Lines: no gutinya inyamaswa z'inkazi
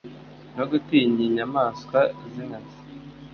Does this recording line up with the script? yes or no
yes